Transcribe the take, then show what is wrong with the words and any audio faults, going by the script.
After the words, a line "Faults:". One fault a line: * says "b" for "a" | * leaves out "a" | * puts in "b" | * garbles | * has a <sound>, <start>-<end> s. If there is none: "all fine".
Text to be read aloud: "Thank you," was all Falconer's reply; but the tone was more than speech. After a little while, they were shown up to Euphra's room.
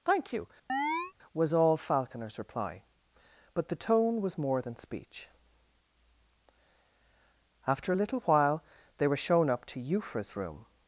"Thank you," was all Falconer's reply; but the tone was more than speech. After a little while, they were shown up to Euphra's room.
Faults:
* has a chirp, 0.7-1.1 s